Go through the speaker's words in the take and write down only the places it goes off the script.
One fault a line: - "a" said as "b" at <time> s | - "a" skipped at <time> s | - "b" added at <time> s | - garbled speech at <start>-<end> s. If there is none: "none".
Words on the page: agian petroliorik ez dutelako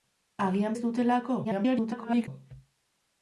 - "petroliorik" skipped at 0.8 s
- garbled speech at 1.4-2.3 s